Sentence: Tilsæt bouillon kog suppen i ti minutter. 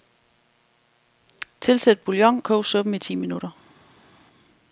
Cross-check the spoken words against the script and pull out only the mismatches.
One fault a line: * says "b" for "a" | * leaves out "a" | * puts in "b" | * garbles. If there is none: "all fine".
all fine